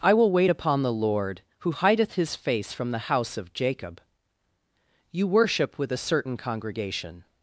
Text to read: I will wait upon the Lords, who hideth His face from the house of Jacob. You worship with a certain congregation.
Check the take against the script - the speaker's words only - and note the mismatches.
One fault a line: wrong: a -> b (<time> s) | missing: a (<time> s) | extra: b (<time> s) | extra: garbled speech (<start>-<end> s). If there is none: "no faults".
wrong: Lords -> Lord (0.9 s)